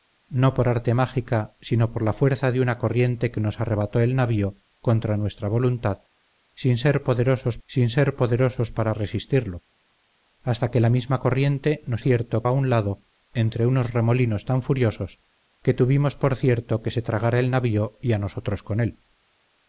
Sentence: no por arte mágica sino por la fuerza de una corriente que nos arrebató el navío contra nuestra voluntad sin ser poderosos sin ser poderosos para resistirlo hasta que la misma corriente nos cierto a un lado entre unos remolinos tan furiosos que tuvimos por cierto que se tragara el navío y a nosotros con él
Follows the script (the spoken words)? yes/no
yes